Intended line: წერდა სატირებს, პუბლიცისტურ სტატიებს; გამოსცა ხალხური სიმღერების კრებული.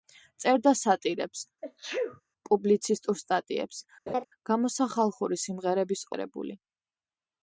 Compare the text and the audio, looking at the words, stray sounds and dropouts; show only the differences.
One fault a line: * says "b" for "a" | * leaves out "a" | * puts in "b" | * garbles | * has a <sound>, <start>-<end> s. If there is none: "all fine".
* has a sneeze, 1.6-2.2 s
* has a laugh, 4.1-4.2 s